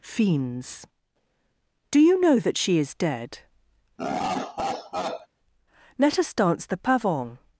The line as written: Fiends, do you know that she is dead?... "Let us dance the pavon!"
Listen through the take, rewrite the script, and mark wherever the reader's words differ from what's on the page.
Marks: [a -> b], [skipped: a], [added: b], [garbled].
Fiends, do you know that she is dead?... "Let us dance the pavon!"